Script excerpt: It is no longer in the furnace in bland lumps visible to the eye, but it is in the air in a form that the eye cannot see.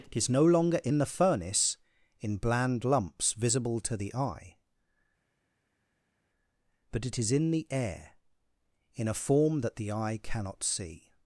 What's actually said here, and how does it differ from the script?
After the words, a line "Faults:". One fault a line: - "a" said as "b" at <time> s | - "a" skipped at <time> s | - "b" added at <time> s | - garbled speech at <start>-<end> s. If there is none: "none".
It is no longer in the furnace in bland lumps visible to the eye, but it is in the air in a form that the eye cannot see.
Faults:
none